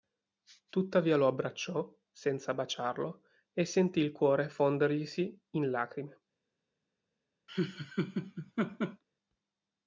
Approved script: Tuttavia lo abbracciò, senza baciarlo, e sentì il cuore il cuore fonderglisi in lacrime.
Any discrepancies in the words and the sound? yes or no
yes